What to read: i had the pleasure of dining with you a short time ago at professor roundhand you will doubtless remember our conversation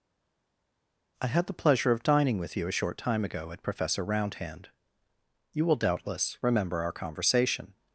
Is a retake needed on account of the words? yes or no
no